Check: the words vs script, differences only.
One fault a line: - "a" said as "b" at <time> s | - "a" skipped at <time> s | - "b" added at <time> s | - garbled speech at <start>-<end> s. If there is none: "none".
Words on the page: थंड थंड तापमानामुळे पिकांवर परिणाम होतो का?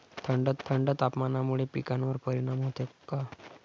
none